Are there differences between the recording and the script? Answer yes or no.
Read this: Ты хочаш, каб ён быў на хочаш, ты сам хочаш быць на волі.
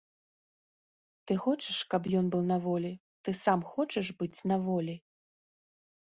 yes